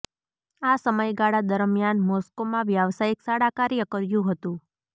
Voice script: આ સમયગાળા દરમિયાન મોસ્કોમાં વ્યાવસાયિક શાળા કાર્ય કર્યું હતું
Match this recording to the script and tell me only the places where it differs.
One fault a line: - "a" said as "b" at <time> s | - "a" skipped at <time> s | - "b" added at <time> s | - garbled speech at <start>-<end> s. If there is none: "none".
none